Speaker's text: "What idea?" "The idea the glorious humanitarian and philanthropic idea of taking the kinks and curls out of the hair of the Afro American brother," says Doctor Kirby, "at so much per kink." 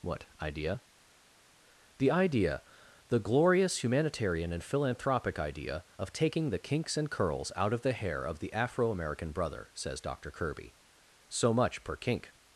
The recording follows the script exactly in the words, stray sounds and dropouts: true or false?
false